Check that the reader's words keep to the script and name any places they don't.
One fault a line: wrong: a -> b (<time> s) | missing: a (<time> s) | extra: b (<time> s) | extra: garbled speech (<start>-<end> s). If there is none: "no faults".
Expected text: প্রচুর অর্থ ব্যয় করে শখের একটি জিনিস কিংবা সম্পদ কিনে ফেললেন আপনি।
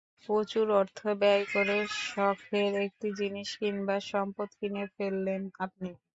no faults